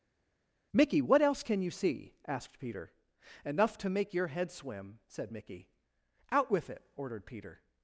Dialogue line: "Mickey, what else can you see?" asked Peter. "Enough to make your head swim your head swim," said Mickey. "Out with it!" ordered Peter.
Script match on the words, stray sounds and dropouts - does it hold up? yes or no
no